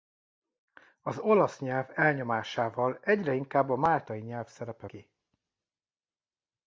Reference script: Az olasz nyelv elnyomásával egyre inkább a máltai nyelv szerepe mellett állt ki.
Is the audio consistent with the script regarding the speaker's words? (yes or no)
no